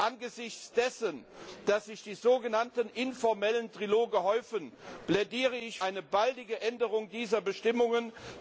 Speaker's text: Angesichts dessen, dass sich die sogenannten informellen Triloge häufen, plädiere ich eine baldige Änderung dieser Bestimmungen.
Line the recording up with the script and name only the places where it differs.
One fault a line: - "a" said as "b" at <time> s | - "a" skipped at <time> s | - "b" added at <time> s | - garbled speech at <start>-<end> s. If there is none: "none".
none